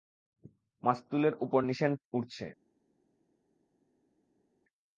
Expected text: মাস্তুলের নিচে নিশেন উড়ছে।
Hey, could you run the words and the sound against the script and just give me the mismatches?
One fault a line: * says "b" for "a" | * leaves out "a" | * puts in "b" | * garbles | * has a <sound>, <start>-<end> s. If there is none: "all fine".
* says "উপর" for "নিচে"